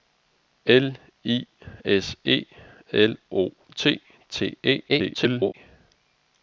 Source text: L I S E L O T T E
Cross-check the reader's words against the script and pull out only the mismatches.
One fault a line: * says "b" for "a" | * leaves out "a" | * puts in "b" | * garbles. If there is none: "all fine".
* garbles